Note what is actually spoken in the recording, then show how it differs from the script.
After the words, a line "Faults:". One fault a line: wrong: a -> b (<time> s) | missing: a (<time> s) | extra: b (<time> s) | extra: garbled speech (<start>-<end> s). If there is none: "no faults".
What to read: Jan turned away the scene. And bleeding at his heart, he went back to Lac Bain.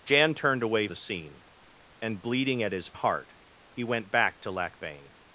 Jan turned away the scene. And bleeding at his heart, he went back to Lac Bain.
Faults:
no faults